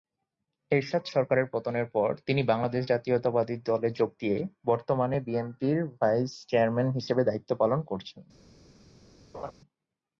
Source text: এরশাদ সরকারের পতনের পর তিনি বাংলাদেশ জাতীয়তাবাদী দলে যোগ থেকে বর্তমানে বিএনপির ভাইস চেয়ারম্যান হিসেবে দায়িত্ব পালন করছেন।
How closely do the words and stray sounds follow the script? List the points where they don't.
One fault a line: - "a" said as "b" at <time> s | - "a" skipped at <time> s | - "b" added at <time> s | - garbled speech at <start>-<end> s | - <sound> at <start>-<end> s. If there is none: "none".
- "থেকে" said as "দিয়ে" at 4.2 s
- laugh at 9.3-9.5 s